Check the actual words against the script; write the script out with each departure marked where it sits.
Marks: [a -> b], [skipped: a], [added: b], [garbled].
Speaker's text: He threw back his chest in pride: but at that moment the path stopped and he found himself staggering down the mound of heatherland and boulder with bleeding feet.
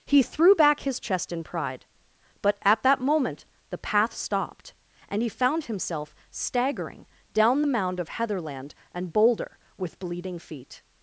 He threw back his chest in pride: but at that moment the path stopped and he found himself staggering down the mound of heatherland and boulder with bleeding feet.